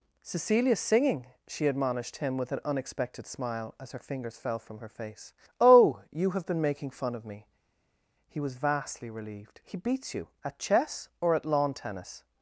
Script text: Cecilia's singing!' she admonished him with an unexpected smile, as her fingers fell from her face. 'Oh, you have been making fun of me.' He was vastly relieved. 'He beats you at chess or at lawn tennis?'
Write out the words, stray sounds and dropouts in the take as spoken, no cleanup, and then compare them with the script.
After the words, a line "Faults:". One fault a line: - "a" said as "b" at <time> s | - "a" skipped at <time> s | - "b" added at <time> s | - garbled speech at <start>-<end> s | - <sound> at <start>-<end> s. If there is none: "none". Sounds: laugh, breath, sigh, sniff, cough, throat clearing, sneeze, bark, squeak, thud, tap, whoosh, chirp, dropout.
Cecilia's singing!' she admonished him with an unexpected smile, as her fingers fell from her face. 'Oh, you have been making fun of me.' He was vastly relieved. 'He beats you at chess or at lawn tennis?'
Faults:
none